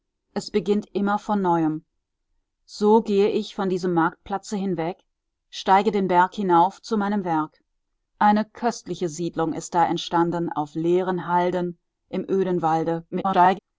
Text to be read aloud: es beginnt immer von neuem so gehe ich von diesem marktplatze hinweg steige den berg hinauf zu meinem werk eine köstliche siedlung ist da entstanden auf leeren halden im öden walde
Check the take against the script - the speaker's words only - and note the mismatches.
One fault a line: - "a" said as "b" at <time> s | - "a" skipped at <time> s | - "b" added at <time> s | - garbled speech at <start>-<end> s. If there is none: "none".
- garbled speech at 13.1-13.6 s